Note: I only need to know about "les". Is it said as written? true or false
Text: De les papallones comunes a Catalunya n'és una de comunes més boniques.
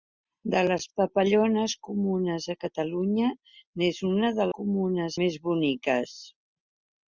true